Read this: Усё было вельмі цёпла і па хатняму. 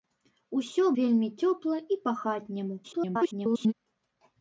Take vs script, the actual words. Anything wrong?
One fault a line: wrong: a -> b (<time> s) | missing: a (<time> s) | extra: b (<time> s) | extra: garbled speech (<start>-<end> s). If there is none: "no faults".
missing: было (0.8 s)
extra: garbled speech (2.8-3.7 s)